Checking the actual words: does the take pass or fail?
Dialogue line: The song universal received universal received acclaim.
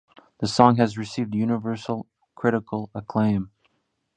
fail